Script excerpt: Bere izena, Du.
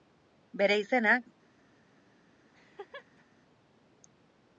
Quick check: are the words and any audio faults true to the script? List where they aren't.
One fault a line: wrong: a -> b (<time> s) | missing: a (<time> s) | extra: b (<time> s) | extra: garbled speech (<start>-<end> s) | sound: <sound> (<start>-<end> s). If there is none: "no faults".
sound: laugh (2.5-3.2 s)